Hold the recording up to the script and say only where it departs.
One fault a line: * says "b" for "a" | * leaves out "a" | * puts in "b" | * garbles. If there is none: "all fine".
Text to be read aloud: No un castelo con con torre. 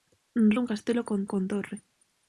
all fine